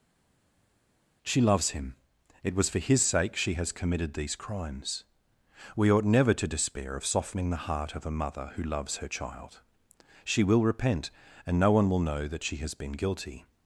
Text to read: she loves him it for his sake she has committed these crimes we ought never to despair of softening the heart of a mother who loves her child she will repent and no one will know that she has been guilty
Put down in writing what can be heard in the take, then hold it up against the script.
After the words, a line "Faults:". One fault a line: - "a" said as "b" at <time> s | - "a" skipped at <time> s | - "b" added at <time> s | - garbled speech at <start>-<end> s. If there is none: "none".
she loves him it was for his sake she has committed these crimes we ought never to despair of softening the heart of a mother who loves her child she will repent and no one will know that she has been guilty
Faults:
- "was" added at 2.5 s